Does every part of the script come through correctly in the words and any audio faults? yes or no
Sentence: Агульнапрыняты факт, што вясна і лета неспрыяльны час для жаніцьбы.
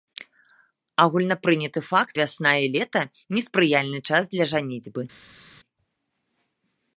no